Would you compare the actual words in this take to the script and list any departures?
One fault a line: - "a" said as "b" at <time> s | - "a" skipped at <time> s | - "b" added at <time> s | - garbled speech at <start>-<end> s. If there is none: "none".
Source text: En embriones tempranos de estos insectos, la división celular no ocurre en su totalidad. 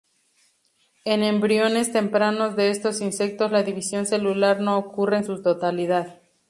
none